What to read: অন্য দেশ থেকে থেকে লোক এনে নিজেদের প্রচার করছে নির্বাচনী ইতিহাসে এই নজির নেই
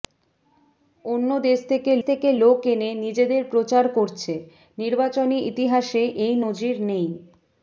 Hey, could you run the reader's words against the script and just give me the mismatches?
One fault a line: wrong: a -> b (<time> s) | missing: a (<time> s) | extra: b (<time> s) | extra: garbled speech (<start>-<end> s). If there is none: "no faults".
no faults